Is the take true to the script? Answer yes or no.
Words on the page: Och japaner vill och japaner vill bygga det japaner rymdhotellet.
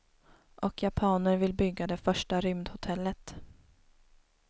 no